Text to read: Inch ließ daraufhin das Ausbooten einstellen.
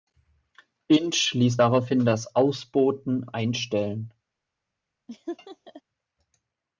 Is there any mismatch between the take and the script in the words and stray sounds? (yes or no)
yes